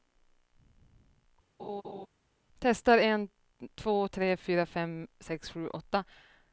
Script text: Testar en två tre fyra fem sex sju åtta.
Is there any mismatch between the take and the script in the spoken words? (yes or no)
no